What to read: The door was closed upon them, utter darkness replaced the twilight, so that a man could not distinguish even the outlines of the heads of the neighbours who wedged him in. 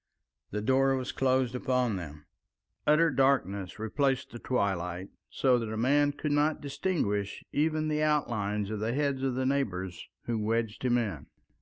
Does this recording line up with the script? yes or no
yes